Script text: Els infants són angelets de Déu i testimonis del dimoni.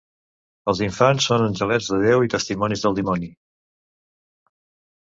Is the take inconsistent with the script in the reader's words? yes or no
no